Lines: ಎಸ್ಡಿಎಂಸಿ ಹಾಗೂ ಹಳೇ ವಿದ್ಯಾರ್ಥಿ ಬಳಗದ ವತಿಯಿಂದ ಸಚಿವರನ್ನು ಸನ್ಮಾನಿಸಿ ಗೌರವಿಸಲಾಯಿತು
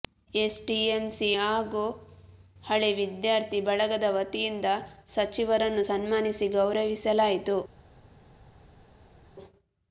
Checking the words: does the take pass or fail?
pass